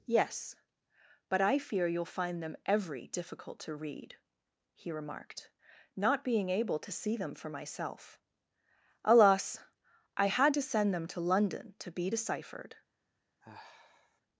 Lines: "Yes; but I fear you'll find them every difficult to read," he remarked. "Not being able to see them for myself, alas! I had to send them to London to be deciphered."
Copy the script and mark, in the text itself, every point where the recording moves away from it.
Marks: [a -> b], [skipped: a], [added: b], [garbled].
"Yes; but I fear you'll find them every difficult to read," he remarked. "Not being able to see them for myself, alas! I had to send them to London to be deciphered."